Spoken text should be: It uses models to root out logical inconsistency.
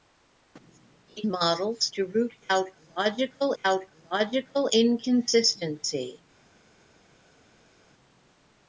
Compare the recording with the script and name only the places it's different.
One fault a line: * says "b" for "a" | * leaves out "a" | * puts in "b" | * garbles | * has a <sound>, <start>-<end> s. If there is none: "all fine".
* leaves out "uses"
* puts in "out logical"